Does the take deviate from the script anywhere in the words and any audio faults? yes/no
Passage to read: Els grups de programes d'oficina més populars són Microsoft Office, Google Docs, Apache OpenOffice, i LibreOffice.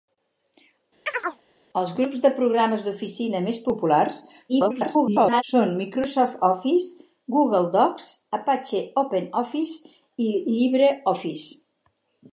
yes